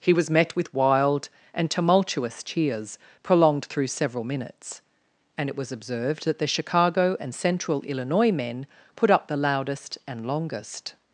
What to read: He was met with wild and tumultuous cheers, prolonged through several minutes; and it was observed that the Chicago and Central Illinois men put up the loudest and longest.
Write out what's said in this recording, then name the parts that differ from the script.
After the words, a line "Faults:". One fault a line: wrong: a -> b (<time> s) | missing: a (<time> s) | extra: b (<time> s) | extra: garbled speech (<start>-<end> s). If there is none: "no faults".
He was met with wild and tumultuous cheers, prolonged through several minutes; and it was observed that the Chicago and Central Illinois men put up the loudest and longest.
Faults:
no faults